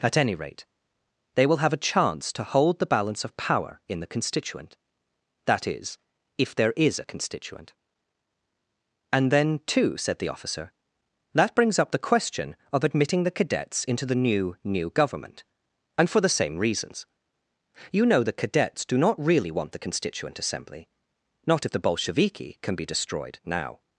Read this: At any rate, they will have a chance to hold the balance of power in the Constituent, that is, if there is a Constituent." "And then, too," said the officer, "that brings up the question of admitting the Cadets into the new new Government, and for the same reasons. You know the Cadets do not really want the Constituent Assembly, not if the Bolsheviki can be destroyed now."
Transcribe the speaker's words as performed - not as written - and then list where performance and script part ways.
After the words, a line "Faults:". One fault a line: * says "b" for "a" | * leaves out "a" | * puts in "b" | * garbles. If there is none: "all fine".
At any rate, they will have a chance to hold the balance of power in the Constituent, that is, if there is a Constituent." "And then, too," said the officer, "that brings up the question of admitting the Cadets into the new new Government, and for the same reasons. You know the Cadets do not really want the Constituent Assembly, not if the Bolsheviki can be destroyed now."
Faults:
all fine